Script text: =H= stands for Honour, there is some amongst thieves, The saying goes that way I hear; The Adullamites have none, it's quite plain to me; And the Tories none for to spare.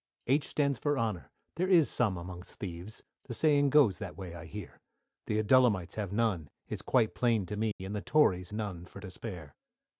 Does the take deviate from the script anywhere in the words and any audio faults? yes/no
yes